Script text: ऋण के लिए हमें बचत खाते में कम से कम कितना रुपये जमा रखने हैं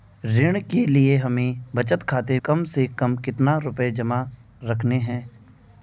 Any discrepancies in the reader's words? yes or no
yes